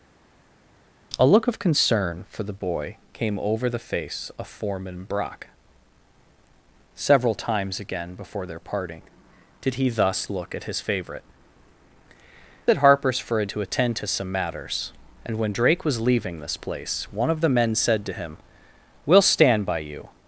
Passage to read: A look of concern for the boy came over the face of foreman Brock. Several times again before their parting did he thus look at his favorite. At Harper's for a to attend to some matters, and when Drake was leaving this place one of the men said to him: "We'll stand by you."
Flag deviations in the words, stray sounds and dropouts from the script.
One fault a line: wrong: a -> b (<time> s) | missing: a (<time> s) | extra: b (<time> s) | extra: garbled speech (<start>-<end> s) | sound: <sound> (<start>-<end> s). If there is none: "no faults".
no faults